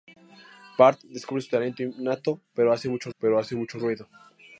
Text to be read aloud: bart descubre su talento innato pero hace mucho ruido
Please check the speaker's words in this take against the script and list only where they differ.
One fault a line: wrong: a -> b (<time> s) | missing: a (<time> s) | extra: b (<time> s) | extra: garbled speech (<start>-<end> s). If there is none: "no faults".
extra: pero hace mucho (3.2 s)